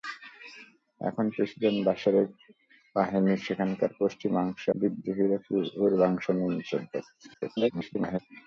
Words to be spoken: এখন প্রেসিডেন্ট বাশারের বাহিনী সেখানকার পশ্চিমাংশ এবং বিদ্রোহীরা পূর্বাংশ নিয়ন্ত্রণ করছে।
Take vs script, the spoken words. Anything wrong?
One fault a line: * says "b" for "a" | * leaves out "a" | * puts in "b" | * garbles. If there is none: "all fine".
* leaves out "এবং"
* garbles